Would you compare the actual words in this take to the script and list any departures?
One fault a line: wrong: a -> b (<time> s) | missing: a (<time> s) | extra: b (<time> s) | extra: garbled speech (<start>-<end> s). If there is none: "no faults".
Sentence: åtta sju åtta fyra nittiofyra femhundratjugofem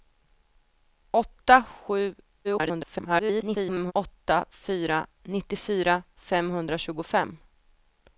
extra: garbled speech (2.4-3.9 s)